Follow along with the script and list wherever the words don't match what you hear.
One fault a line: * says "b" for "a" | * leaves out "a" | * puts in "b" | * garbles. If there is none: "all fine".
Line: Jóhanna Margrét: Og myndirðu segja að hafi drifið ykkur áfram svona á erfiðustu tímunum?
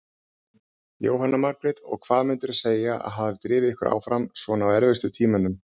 * puts in "hvað"